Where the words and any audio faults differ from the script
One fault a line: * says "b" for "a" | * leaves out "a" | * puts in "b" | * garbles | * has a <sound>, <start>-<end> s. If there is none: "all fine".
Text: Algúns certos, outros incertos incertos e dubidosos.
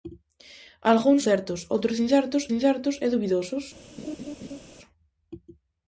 * has a laugh, 4.0-4.6 s